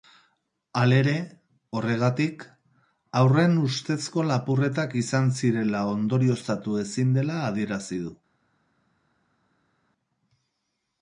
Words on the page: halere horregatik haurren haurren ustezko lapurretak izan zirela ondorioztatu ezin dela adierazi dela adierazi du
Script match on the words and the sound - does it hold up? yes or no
no